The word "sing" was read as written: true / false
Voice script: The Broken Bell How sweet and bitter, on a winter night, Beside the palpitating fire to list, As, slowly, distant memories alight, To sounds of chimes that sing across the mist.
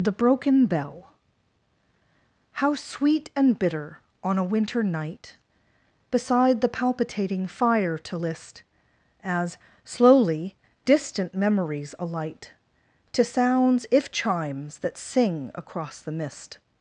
true